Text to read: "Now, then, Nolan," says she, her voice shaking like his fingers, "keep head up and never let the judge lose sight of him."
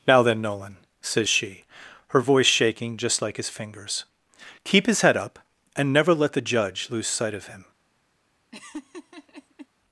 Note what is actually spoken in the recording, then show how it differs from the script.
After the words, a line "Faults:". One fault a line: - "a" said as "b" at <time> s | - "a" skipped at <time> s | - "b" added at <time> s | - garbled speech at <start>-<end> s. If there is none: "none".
"Now, then, Nolan," says she, her voice shaking just like his fingers, "keep his head up and never let the judge lose sight of him."
Faults:
- "just" added at 3.0 s
- "his" added at 4.9 s